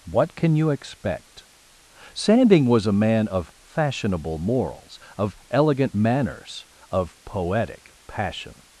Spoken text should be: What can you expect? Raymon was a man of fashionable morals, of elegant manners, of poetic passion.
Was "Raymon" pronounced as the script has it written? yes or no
no